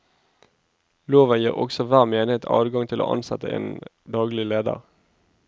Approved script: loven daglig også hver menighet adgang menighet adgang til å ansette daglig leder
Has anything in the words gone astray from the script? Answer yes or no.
yes